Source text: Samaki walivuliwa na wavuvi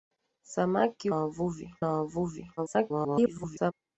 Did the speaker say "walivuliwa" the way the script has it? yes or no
no